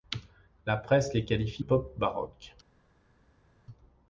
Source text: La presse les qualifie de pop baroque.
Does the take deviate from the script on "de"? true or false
true